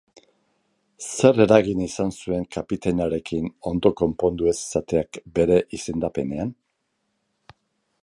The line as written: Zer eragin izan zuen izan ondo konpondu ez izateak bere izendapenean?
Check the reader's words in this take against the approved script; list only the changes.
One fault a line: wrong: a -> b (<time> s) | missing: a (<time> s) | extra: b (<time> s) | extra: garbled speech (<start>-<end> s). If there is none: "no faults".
wrong: izan -> kapitainarekin (2.6 s)